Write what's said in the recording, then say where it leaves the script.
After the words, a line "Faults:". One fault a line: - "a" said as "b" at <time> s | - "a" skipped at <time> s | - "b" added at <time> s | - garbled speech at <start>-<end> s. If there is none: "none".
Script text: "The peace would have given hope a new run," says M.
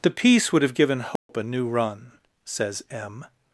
"The peace would have given hope a new run," says M.
Faults:
none